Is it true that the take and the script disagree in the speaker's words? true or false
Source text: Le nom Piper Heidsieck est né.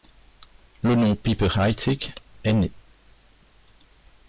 false